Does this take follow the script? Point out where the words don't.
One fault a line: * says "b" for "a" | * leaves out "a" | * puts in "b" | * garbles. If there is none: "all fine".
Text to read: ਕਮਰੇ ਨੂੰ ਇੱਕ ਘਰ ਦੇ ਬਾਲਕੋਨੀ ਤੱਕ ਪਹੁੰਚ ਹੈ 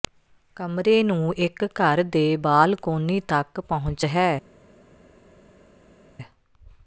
all fine